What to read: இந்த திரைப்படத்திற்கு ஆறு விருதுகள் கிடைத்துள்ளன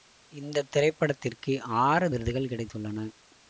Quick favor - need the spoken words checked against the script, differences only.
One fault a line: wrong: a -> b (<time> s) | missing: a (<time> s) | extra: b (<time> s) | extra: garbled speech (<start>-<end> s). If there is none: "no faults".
no faults